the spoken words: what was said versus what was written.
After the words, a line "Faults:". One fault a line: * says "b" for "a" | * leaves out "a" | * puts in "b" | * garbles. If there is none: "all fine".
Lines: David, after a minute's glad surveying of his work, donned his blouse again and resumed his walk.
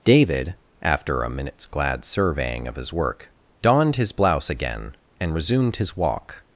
David, after a minute's glad surveying of his work, donned his blouse again and resumed his walk.
Faults:
all fine